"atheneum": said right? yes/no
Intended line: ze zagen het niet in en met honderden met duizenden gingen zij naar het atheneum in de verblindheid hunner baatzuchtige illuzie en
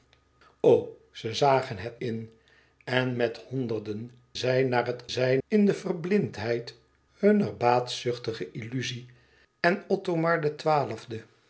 no